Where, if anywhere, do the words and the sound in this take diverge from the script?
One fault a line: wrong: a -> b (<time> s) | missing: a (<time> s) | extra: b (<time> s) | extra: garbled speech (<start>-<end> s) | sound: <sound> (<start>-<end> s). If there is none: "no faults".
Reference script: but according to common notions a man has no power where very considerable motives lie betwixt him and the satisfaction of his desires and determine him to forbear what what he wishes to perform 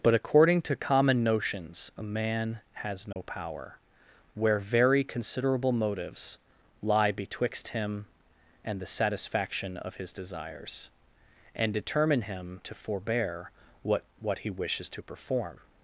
sound: dropout (3.1-3.2 s)